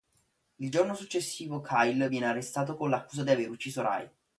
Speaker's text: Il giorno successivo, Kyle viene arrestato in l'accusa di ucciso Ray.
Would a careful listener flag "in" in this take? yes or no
yes